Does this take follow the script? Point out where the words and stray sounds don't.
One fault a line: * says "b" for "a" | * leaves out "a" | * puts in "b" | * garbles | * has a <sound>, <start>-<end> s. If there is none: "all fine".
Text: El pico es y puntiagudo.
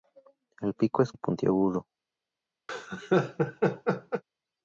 * has a laugh, 2.7-4.2 s